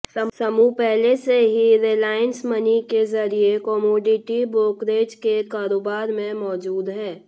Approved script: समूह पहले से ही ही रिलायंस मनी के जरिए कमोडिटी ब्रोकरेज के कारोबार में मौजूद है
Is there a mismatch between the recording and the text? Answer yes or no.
yes